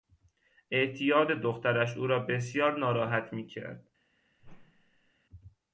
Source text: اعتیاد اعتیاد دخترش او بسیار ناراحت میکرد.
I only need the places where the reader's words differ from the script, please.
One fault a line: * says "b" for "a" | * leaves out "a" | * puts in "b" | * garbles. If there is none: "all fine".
* leaves out "اعتیاد"
* puts in "را"